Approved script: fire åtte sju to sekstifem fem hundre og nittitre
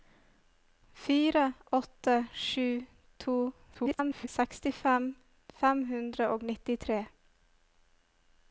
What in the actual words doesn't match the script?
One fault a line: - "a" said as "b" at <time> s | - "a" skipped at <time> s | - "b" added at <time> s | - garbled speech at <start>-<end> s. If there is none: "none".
- garbled speech at 3.7-4.3 s